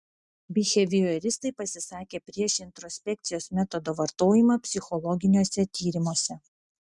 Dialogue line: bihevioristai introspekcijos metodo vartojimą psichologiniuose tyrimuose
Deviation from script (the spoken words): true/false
true